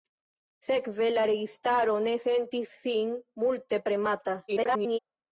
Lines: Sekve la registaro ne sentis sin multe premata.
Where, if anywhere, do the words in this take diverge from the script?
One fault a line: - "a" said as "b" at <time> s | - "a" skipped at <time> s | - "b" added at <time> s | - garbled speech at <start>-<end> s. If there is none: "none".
- garbled speech at 4.5-5.0 s